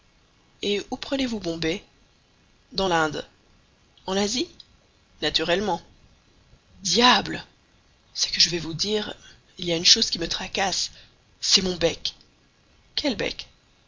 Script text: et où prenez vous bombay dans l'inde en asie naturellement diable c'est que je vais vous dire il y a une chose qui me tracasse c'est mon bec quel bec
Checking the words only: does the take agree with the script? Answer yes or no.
yes